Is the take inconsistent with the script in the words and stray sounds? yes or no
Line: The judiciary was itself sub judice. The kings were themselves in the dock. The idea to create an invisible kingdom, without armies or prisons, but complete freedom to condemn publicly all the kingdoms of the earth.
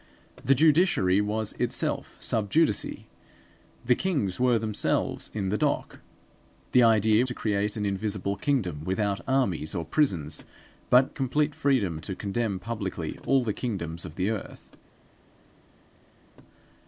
no